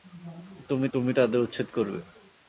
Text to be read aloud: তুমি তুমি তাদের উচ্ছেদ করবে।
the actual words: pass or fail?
pass